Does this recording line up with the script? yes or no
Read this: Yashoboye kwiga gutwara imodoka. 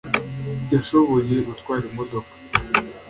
no